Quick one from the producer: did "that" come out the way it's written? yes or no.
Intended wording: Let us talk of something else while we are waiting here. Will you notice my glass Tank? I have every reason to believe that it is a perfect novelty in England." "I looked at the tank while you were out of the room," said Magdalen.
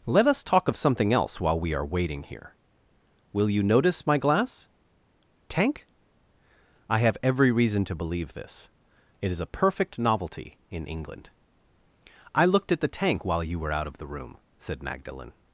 no